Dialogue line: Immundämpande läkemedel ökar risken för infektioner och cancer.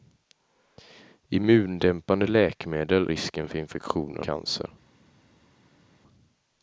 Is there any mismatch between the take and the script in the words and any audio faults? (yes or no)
yes